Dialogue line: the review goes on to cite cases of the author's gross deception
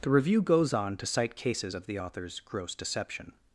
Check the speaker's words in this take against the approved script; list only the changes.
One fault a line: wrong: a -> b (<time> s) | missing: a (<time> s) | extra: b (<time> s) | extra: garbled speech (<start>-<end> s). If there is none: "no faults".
no faults